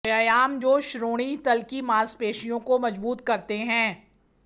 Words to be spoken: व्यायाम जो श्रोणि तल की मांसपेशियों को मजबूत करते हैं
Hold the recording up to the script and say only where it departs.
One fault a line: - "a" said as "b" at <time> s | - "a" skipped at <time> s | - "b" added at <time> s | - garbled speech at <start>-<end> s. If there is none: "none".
none